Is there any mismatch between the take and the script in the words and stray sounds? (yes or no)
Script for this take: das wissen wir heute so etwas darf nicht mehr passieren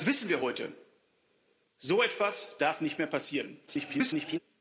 yes